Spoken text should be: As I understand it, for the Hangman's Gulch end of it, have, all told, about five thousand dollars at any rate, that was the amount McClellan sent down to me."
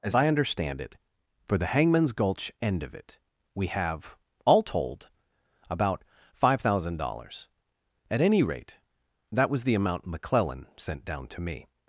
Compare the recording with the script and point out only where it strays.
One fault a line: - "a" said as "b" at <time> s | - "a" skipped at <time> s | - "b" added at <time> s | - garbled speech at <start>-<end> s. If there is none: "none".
- "we" added at 3.5 s